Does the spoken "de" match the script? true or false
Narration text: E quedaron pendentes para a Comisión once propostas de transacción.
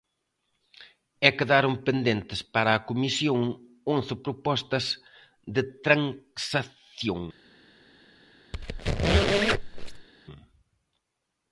true